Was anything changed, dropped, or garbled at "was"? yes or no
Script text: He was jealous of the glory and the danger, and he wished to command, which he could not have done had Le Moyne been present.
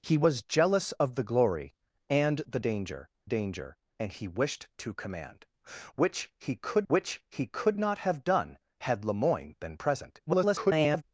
no